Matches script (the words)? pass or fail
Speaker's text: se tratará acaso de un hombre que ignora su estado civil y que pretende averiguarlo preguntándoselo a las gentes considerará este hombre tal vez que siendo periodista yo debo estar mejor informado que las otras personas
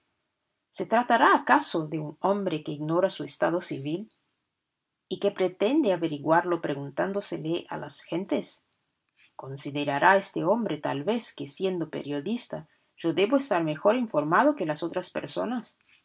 pass